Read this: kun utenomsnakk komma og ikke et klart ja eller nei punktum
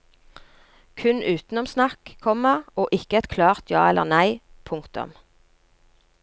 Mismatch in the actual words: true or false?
false